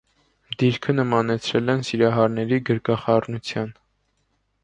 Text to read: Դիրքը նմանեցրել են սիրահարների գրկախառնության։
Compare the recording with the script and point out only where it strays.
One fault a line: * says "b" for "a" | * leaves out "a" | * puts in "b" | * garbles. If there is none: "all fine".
all fine